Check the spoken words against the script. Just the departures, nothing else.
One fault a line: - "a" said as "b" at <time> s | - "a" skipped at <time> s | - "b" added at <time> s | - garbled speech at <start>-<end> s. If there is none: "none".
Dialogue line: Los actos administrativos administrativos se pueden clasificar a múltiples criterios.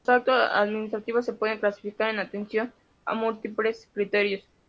- "administrativos" skipped at 1.3 s
- "en atención" added at 2.1 s